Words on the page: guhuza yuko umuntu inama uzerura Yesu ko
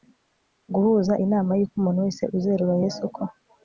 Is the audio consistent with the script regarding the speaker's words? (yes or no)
no